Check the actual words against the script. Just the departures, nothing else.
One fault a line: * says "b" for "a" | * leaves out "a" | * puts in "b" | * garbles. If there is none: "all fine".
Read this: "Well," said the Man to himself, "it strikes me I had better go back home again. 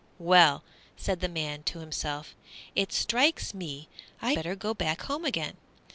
* leaves out "had"